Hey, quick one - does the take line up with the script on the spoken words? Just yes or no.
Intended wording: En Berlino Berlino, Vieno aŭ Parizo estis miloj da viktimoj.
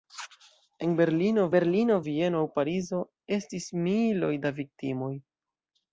yes